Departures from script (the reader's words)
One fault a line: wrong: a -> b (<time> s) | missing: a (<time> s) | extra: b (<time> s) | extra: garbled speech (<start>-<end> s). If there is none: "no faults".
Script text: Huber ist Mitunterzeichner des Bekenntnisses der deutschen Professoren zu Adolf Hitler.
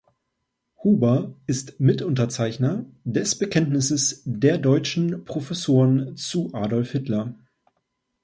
no faults